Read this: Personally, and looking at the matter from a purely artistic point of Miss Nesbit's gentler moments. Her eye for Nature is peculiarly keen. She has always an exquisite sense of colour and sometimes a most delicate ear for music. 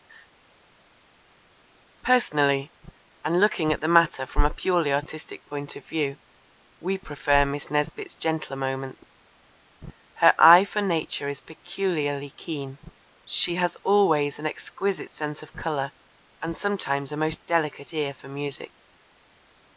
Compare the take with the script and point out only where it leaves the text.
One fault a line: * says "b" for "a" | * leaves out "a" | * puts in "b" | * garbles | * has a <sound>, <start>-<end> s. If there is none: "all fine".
* puts in "view we prefer"